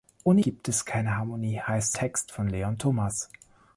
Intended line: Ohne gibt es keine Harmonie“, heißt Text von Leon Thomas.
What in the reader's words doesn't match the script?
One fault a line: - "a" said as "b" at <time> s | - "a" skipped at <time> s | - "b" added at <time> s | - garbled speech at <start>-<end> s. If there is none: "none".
none